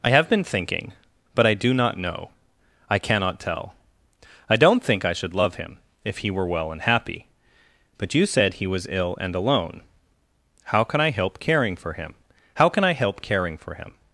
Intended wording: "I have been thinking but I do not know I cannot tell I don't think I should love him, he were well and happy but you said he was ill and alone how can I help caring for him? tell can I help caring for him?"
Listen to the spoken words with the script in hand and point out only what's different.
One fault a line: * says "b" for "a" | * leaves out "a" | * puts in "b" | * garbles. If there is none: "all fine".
* puts in "if"
* says "how" for "tell"